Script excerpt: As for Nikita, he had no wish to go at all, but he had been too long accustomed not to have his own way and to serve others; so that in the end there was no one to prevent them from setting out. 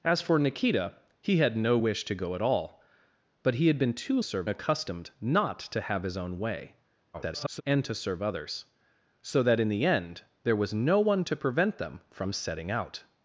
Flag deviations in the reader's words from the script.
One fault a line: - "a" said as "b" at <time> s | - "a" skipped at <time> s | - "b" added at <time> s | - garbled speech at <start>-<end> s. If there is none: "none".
- "long" said as "serve" at 4.2 s
- garbled speech at 7.1-7.6 s